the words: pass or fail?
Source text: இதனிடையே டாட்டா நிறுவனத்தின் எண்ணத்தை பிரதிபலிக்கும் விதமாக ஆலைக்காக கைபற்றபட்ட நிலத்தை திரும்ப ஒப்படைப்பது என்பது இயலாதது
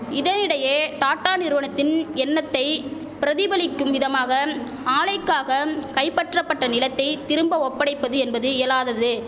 pass